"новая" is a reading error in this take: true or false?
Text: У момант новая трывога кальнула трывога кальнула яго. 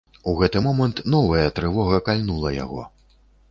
false